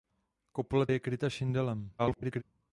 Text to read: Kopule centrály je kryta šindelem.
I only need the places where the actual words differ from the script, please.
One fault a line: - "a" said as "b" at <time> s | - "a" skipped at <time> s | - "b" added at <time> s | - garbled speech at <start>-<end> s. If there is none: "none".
- "centrály" skipped at 0.9 s
- garbled speech at 2.0-2.4 s